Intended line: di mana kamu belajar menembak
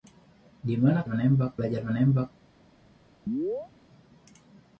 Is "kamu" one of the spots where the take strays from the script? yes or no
yes